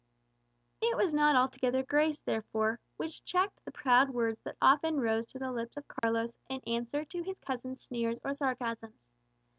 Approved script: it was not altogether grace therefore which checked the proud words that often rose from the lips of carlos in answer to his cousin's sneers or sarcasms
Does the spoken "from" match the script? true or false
false